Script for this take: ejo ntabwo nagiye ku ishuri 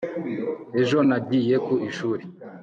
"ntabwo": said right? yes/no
no